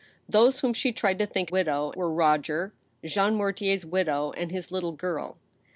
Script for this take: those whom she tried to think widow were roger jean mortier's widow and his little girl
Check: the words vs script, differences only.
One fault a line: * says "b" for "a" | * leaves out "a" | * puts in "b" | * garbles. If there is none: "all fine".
all fine